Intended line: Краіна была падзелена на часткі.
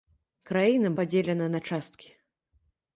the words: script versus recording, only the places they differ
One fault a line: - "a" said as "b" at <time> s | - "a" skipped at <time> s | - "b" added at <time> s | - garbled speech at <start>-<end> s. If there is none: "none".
- "была" skipped at 0.9 s